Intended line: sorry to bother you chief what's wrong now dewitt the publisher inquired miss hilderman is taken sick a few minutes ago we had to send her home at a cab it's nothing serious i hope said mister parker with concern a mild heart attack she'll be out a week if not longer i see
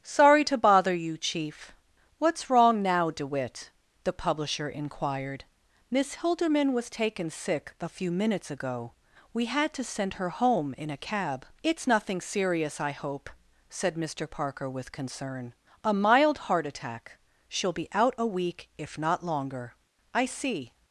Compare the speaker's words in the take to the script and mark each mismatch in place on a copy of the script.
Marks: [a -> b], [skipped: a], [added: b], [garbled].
sorry to bother you chief what's wrong now dewitt the publisher inquired miss hilderman [is -> was] taken sick a few minutes ago we had to send her home [at -> in] a cab it's nothing serious i hope said mister parker with concern a mild heart attack she'll be out a week if not longer i see